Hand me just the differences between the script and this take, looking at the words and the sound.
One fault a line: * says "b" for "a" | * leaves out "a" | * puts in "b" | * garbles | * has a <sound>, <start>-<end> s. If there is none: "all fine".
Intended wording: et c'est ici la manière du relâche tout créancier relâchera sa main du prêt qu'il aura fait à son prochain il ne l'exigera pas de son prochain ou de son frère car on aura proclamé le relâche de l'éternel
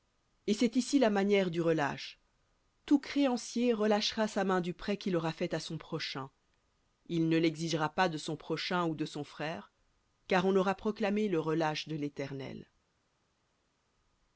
all fine